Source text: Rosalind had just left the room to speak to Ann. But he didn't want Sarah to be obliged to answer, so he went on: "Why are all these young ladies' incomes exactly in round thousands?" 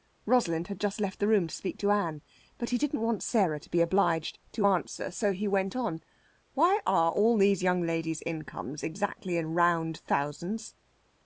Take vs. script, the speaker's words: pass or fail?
pass